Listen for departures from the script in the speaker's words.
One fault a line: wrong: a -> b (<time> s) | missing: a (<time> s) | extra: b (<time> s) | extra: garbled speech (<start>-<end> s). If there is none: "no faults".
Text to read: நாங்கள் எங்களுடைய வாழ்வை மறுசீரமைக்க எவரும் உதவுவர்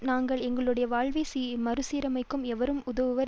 no faults